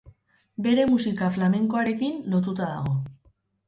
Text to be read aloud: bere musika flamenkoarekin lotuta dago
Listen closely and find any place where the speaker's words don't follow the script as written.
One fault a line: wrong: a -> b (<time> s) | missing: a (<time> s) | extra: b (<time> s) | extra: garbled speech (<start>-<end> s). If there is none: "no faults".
no faults